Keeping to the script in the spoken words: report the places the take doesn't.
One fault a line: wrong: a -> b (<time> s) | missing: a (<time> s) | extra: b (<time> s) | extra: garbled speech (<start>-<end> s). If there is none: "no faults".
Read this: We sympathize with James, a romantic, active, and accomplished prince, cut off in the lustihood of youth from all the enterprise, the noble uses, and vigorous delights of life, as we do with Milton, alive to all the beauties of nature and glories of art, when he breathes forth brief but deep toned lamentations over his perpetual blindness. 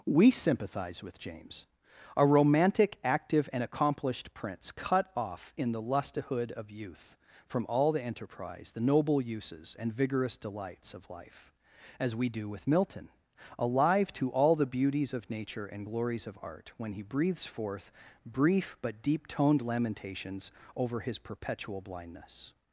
no faults